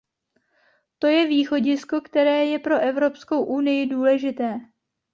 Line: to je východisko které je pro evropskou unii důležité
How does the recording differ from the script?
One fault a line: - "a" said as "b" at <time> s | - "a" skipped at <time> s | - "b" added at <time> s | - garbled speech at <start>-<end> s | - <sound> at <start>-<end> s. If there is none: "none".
none